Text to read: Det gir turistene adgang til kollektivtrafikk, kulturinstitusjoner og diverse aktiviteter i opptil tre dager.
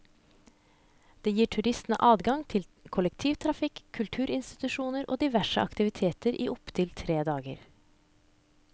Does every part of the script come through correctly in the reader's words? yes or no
yes